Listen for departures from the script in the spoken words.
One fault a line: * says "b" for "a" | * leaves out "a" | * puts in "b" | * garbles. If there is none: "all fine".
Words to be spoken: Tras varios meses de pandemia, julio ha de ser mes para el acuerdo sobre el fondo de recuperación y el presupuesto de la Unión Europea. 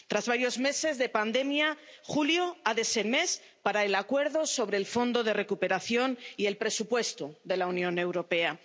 all fine